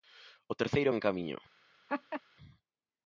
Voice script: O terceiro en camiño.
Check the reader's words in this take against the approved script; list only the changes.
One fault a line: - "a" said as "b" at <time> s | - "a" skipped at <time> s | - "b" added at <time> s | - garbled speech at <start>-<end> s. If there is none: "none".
none